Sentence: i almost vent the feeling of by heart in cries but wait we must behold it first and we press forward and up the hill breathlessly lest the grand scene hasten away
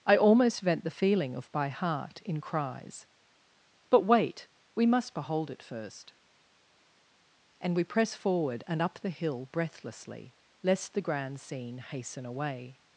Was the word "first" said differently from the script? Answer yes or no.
no